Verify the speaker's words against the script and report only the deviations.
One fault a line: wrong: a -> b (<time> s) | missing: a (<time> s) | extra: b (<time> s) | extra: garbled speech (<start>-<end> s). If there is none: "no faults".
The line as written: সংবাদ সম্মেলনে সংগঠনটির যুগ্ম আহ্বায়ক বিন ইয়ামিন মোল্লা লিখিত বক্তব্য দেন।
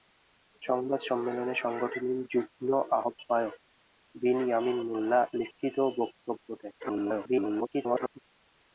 extra: garbled speech (6.8-8.2 s)